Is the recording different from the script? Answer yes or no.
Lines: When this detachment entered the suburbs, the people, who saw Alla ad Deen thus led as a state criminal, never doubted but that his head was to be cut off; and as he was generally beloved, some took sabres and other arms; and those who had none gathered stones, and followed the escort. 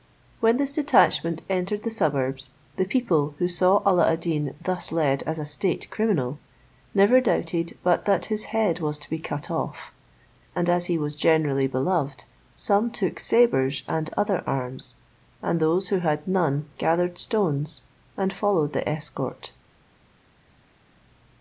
no